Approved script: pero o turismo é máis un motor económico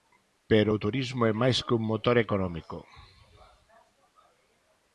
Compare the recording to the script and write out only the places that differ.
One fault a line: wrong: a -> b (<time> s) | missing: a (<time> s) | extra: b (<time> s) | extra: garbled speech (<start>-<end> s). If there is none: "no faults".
extra: que (1.6 s)